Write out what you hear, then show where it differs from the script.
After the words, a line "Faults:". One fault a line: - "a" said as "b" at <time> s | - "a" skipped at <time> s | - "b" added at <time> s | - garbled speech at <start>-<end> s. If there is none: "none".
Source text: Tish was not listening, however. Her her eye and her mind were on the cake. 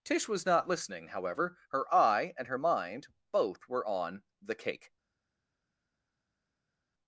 Tish was not listening, however. Her eye and her mind both were on the cake.
Faults:
- "her" skipped at 1.9 s
- "both" added at 3.3 s